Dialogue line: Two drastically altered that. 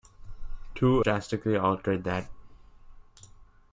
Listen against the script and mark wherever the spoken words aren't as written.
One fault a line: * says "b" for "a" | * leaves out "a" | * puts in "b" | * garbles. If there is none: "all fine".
all fine